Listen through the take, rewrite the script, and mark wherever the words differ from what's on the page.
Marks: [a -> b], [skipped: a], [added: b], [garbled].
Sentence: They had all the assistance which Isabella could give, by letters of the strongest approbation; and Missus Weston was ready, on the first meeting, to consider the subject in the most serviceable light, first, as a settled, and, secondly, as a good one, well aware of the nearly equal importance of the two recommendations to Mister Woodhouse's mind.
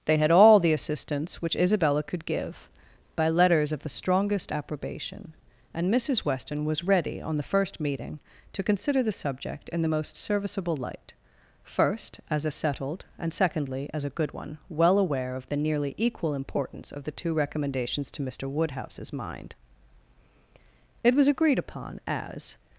They had all the assistance which Isabella could give, by letters of the strongest approbation; and Missus Weston was ready, on the first meeting, to consider the subject in the most serviceable light, first, as a settled, and, secondly, as a good one, well aware of the nearly equal importance of the two recommendations to Mister Woodhouse's mind. [added: It was agreed upon as]